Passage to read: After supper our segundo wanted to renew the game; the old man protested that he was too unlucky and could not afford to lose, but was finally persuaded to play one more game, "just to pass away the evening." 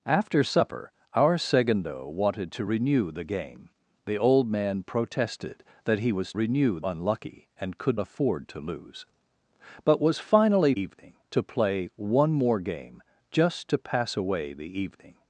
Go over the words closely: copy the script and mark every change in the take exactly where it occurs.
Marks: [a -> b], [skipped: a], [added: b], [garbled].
After supper our segundo wanted to renew the game; the old man protested that he was [too -> renew] unlucky and could [skipped: not] afford to lose, but was finally [persuaded -> evening] to play one more game, "just to pass away the evening."